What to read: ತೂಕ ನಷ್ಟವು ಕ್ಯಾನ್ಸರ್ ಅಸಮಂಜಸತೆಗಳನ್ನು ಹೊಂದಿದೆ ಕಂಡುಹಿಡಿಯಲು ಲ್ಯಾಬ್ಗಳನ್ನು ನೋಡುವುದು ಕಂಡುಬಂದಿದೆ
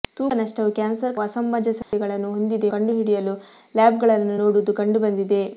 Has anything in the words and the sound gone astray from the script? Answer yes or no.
yes